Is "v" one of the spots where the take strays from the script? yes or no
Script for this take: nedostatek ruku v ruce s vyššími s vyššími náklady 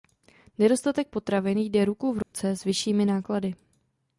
no